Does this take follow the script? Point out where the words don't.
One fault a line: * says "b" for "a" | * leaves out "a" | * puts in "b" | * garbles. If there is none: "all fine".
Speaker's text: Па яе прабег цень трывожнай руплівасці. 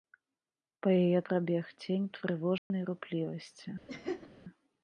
all fine